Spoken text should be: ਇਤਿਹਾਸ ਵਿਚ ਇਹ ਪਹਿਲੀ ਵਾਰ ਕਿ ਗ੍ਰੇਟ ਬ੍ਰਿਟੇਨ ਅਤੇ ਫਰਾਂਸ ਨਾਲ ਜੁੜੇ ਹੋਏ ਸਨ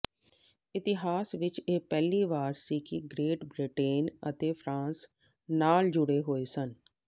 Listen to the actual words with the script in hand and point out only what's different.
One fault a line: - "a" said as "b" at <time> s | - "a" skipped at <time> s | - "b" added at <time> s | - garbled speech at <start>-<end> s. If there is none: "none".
- "ਸੀ" added at 2.6 s